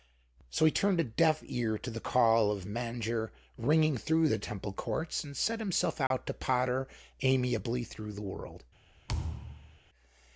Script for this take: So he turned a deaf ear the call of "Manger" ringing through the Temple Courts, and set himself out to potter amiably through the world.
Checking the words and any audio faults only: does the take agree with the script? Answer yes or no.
no